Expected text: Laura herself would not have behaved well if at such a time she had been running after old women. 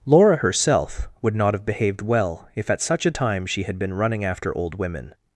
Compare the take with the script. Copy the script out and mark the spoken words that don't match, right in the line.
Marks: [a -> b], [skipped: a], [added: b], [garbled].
Laura herself would not have behaved well if at such a time she had been running after old women.